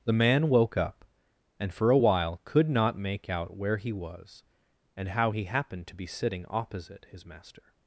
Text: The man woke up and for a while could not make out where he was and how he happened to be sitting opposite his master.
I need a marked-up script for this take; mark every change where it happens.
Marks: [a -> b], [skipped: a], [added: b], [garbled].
The man woke up and for a while could not make out where he was and how he happened to be sitting opposite his master.